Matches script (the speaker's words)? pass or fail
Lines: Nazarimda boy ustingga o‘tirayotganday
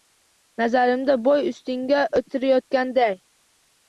pass